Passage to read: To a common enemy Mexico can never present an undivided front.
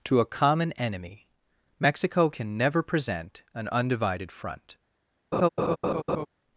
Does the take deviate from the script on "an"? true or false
false